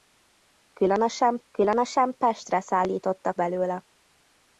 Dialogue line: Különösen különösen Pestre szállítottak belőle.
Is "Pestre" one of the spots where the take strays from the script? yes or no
no